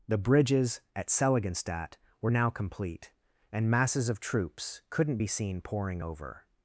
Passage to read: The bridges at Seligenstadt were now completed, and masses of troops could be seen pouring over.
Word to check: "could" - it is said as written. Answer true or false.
false